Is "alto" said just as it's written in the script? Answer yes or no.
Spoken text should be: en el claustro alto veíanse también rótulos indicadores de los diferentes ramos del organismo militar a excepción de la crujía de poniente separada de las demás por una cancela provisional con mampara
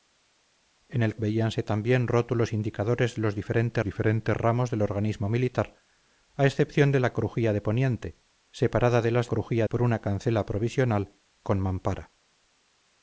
no